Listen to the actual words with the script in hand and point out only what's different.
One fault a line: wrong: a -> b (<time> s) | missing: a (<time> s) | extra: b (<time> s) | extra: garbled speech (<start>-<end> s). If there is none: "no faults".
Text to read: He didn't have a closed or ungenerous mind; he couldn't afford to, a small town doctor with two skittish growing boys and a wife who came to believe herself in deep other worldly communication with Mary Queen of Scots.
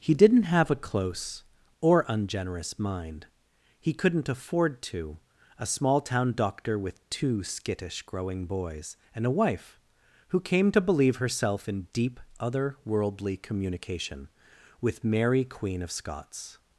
wrong: closed -> close (0.8 s)